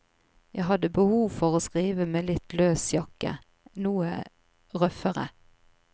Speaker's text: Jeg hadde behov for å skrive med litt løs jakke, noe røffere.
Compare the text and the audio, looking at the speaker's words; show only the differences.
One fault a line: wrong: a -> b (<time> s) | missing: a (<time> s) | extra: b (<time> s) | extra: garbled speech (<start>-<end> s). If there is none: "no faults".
no faults